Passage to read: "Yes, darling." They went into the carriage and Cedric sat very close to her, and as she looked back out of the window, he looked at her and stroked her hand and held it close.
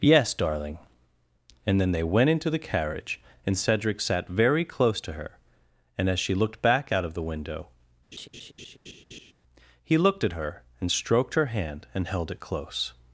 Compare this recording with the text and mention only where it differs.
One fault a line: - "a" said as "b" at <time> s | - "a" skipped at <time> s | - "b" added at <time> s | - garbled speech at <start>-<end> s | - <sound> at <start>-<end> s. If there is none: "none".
- "And then" added at 1.6 s
- laugh at 8.1-9.3 s